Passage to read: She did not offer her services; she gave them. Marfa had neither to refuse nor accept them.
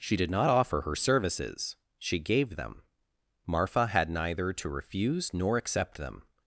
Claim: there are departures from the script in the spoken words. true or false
false